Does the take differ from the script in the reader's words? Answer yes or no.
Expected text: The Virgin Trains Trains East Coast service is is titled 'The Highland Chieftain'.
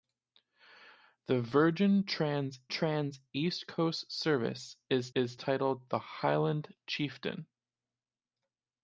no